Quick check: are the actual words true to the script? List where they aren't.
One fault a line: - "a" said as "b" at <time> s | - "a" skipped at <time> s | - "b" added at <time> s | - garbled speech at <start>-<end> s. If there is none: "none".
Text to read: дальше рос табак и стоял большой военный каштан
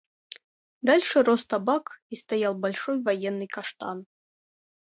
none